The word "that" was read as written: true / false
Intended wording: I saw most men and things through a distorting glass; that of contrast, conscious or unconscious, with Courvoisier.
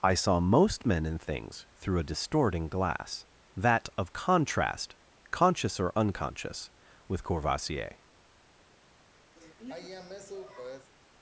true